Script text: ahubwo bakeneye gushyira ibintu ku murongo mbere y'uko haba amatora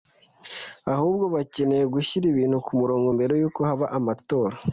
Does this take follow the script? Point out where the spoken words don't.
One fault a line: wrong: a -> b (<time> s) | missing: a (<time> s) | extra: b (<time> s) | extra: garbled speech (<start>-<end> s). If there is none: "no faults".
no faults